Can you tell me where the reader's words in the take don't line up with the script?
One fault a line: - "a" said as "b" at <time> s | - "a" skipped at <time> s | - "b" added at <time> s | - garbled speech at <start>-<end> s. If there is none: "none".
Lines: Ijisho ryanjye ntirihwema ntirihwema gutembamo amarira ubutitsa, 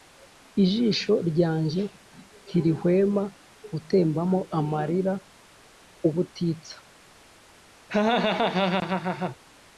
- "ntirihwema" skipped at 3.2 s